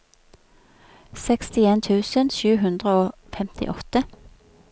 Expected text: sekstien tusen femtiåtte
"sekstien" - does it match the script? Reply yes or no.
yes